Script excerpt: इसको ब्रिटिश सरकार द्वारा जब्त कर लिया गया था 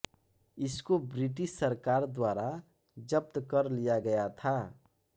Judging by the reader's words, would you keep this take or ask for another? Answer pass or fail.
pass